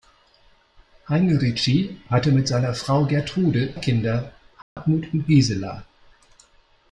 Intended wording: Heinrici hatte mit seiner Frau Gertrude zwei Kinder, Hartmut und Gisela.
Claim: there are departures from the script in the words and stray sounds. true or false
true